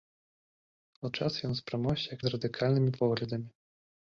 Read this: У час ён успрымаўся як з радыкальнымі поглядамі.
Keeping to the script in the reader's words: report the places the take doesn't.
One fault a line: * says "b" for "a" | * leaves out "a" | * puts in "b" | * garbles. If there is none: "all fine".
all fine